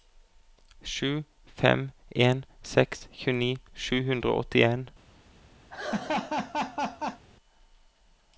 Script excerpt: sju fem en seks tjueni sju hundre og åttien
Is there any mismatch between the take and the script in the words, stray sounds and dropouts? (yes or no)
yes